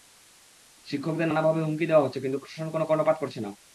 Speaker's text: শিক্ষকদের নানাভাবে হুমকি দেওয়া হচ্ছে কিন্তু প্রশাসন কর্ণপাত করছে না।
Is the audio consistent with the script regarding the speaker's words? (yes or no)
no